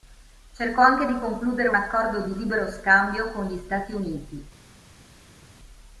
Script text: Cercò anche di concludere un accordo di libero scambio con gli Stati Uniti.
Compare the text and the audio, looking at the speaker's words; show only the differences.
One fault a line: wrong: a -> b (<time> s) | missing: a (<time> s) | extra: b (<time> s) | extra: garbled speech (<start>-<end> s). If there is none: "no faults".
no faults